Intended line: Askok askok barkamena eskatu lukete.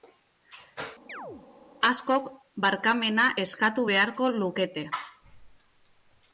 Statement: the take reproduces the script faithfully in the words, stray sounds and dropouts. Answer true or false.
false